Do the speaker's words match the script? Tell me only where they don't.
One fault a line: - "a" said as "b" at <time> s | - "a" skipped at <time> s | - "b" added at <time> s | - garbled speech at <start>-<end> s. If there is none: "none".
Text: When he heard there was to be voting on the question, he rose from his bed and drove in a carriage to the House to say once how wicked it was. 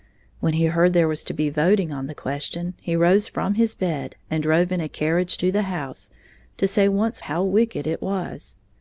none